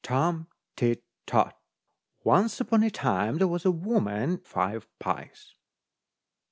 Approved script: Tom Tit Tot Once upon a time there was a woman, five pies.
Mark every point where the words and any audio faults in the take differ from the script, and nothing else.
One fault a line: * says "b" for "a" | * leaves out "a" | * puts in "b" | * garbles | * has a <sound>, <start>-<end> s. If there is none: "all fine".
all fine